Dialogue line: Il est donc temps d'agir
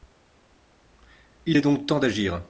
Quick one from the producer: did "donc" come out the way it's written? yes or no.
yes